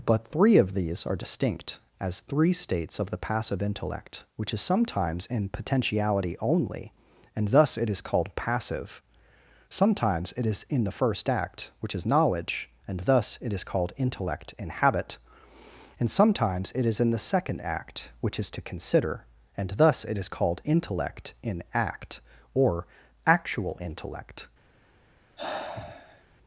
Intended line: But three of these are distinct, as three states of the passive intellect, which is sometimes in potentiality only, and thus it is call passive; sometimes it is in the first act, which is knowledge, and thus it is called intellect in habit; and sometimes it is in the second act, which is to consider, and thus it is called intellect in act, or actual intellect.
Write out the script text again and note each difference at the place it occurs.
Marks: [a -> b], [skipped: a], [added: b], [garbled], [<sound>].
But three of these are distinct, as three states of the passive intellect, which is sometimes in potentiality only, and thus it is [call -> called] passive; sometimes it is in the first act, which is knowledge, and thus it is called intellect in habit; and sometimes it is in the second act, which is to consider, and thus it is called intellect in act, or actual intellect. [sigh]